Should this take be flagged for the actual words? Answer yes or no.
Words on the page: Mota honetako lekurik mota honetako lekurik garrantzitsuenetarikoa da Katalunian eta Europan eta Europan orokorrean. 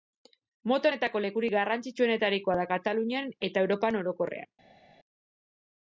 yes